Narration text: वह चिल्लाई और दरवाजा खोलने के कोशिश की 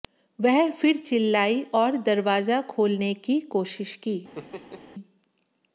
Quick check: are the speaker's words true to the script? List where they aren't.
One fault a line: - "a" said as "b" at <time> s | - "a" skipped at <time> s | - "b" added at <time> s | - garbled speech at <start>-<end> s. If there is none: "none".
- "फिर" added at 0.7 s
- "के" said as "की" at 3.2 s